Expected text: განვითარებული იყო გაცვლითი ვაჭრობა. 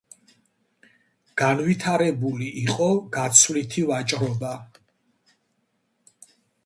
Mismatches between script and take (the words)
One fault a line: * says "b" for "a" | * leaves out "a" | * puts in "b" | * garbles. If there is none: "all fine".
all fine